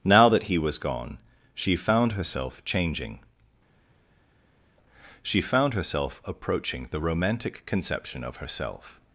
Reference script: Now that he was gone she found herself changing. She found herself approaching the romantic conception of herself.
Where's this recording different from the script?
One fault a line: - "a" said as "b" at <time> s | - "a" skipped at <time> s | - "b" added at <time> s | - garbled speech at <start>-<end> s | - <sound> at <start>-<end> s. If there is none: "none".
none